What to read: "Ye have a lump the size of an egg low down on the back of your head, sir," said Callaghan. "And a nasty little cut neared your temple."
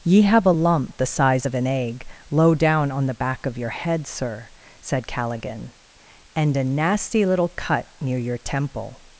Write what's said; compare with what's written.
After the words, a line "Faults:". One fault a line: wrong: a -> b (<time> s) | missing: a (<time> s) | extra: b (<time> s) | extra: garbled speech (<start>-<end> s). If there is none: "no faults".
"Ye have a lump the size of an egg low down on the back of your head, sir," said Callaghan. "And a nasty little cut near your temple."
Faults:
wrong: neared -> near (8.0 s)